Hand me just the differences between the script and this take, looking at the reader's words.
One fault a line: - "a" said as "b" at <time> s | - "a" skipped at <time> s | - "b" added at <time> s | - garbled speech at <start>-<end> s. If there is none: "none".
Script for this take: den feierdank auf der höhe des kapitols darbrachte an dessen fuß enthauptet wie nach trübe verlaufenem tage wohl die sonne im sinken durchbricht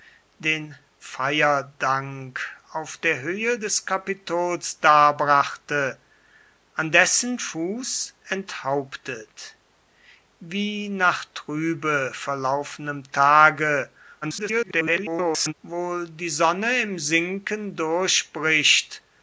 - garbled speech at 14.2-15.5 s